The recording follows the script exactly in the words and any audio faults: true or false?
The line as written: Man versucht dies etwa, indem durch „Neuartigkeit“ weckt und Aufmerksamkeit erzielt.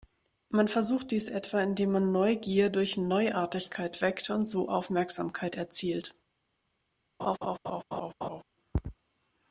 false